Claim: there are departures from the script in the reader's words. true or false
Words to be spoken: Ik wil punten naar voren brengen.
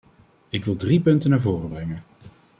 true